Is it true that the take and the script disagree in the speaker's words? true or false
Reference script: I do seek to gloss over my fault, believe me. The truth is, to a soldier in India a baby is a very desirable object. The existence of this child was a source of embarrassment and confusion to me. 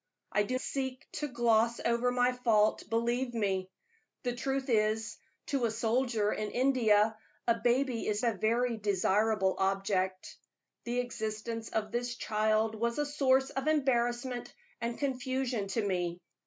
false